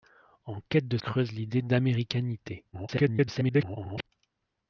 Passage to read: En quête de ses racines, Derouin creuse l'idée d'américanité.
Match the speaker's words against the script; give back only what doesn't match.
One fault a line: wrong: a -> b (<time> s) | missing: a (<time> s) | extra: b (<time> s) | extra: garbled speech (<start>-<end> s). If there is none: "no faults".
missing: ses racines Derouin (1.0 s)
extra: garbled speech (2.7-4.1 s)